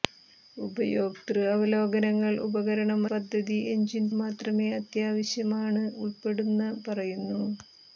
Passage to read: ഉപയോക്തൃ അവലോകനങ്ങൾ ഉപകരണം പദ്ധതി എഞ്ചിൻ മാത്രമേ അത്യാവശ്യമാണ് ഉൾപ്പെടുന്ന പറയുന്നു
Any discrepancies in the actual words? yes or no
no